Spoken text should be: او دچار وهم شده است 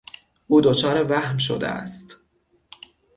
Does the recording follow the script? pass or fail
pass